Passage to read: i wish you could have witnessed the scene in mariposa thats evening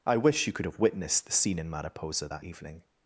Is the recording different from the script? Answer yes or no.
yes